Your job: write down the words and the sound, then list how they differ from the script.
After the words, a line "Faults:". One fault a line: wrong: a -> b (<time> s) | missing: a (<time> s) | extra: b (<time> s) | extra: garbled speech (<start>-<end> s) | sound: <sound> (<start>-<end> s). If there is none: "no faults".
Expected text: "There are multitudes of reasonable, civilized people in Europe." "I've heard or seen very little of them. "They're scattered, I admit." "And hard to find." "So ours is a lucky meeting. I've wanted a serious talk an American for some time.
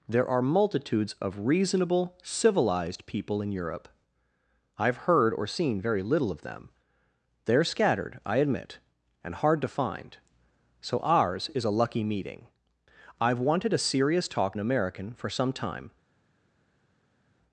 "There are multitudes of reasonable, civilized people in Europe." "I've heard or seen very little of them. "They're scattered, I admit." "And hard to find." "So ours is a lucky meeting. I've wanted a serious talk an American for some time.
Faults:
no faults